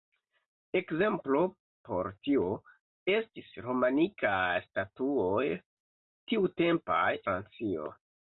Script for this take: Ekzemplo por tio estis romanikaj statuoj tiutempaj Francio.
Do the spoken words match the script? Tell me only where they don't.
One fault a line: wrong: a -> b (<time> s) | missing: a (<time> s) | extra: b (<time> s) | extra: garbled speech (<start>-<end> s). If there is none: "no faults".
no faults